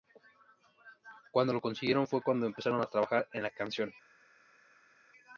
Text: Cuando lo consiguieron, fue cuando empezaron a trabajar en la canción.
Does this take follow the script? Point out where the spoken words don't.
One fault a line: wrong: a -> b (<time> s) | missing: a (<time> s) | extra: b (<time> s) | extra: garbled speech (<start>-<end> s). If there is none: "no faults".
no faults